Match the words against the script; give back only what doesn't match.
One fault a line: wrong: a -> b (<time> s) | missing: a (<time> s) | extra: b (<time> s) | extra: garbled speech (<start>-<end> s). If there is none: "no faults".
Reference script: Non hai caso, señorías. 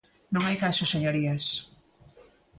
no faults